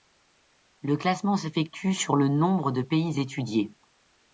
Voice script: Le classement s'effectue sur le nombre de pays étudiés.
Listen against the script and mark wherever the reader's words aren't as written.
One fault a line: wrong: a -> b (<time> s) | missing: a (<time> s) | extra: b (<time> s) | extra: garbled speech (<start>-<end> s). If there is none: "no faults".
no faults